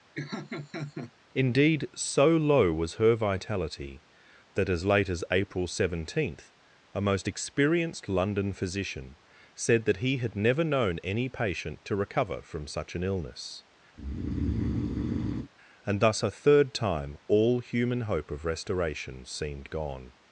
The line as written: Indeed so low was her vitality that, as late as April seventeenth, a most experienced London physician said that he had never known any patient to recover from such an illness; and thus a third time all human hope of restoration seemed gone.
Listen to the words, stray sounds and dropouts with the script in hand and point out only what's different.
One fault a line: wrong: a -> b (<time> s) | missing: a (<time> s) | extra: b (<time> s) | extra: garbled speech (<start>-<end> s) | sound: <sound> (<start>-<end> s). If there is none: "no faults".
sound: laugh (0.2-1.1 s)
sound: breath (13.9-15.5 s)